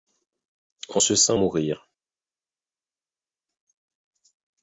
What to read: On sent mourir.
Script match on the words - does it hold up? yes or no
no